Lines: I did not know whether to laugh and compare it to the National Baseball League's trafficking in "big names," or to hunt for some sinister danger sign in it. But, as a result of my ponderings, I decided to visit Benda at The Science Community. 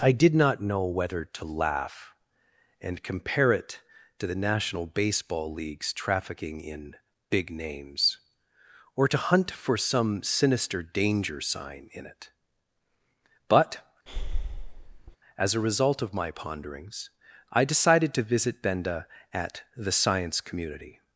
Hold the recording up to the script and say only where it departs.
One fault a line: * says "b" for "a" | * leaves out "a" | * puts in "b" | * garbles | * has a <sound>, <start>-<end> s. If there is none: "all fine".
* has a breath, 14.1-15.2 s